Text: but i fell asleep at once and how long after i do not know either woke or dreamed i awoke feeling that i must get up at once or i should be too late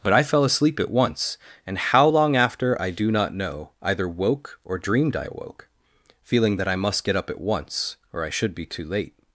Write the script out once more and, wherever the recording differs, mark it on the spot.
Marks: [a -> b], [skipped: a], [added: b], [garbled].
but i fell asleep at once and how long after i do not know either woke or dreamed i awoke feeling that i must get up at once or i should be too late